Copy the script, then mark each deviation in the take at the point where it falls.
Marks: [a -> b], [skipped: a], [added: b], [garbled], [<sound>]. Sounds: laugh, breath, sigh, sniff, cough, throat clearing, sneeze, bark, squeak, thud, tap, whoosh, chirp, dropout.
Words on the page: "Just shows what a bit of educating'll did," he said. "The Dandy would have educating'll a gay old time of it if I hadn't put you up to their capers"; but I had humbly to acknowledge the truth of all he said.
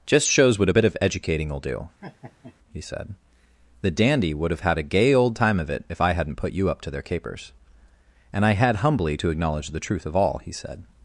"Just shows what a bit of educating'll [did," -> do] [laugh] he said. "The Dandy would have [educating'll -> had] a gay old time of it if I hadn't put you up to their capers"; [but -> and] I had humbly to acknowledge the truth of all he said.